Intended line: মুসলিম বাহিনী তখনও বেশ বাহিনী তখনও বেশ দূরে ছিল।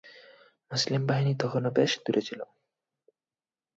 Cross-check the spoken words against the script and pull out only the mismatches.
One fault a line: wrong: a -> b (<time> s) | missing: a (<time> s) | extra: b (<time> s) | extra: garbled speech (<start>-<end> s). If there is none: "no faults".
missing: বাহিনী তখনও বেশ (1.9 s)